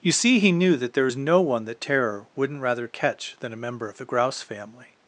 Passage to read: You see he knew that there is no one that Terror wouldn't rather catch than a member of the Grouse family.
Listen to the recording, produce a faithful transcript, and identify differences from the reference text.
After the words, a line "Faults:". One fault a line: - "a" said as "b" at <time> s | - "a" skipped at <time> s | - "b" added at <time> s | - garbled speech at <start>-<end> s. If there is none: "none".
You see he knew that there is no one that Terror wouldn't rather catch than a member of the Grouse family.
Faults:
none